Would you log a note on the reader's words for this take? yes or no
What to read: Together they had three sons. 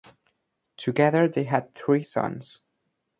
no